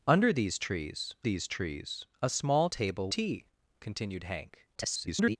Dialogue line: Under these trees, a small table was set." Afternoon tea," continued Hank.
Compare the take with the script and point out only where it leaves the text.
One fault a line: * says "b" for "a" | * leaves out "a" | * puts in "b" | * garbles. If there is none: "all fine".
* puts in "these trees"
* leaves out "was set Afternoon"
* garbles